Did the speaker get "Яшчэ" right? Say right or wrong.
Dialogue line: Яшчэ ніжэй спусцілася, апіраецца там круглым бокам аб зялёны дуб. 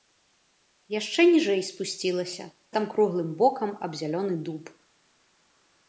right